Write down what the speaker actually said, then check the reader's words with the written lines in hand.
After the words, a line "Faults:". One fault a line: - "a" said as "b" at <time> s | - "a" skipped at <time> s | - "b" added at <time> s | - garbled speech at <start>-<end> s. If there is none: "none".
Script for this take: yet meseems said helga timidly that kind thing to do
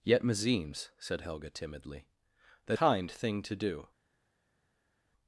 yet meseems said helga timidly that kind thing to do
Faults:
none